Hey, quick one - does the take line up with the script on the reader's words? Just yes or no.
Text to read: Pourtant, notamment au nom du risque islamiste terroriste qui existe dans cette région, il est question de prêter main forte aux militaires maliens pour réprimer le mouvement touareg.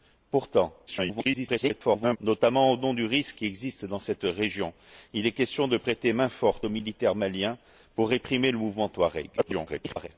no